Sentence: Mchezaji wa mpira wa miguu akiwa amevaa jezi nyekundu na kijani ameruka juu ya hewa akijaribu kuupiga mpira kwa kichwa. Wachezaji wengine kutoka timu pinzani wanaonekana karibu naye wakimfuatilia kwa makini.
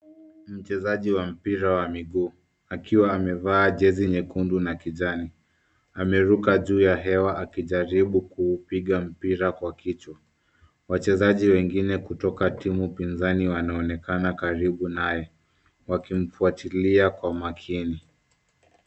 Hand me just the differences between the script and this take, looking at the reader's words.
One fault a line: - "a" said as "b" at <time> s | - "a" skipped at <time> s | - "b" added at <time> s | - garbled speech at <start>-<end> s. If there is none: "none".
none